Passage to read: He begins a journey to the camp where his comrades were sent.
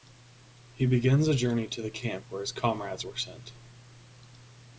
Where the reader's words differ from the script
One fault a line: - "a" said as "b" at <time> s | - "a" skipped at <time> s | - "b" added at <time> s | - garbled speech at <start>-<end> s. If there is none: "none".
none